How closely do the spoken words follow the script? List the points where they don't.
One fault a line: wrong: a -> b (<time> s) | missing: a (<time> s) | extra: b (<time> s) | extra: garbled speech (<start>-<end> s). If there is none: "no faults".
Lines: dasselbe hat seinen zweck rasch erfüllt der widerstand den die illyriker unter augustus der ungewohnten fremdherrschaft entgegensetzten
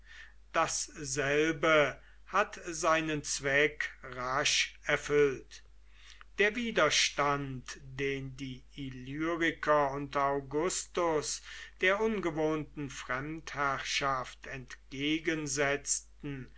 no faults